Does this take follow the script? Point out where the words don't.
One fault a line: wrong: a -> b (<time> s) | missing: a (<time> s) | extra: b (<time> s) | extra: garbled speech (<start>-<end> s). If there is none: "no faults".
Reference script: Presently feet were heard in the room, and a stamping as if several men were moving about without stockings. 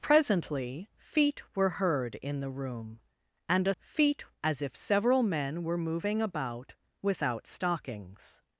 wrong: stamping -> feet (3.8 s)